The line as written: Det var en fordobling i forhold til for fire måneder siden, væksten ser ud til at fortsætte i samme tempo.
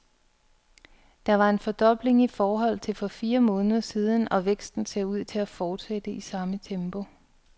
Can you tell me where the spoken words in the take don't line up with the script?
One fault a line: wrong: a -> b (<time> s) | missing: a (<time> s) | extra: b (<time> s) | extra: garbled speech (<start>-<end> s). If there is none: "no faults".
extra: og (4.3 s)